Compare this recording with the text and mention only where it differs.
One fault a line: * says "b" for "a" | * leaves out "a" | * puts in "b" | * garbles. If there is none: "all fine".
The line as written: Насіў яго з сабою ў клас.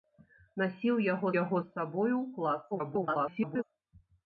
* puts in "яго"
* garbles